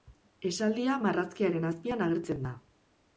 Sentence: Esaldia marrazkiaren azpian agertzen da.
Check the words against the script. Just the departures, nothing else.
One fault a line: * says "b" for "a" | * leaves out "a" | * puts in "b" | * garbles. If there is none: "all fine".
all fine